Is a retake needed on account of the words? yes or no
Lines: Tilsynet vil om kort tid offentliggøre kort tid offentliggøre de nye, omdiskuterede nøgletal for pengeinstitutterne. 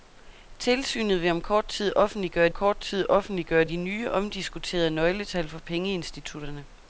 no